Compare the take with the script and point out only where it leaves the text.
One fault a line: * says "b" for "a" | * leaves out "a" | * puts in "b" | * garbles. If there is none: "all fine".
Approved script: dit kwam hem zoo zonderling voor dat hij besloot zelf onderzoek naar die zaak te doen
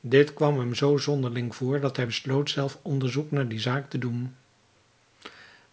all fine